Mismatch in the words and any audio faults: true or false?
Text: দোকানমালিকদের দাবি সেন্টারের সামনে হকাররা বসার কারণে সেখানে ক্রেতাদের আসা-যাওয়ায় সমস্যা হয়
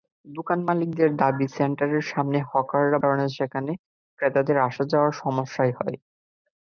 true